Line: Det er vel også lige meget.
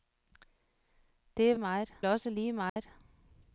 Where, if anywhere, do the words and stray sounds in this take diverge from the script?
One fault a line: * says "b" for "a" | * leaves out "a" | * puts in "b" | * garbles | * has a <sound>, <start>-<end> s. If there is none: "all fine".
* says "meget" for "vel"
* has a dropout, 2.7-2.8 s